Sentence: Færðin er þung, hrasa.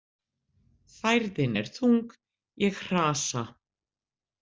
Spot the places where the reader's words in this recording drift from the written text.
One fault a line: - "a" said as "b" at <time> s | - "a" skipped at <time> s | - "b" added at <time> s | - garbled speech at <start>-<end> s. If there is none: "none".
- "ég" added at 2.7 s